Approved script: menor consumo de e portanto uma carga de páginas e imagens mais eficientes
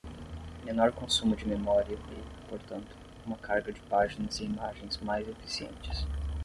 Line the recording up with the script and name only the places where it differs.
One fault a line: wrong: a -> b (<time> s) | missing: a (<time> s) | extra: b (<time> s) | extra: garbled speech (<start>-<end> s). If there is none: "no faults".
extra: memória (1.5 s)